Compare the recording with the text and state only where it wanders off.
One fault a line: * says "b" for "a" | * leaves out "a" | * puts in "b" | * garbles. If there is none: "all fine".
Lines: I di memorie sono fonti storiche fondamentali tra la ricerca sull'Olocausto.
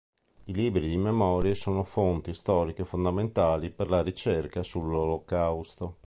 * puts in "libri"
* says "per" for "tra"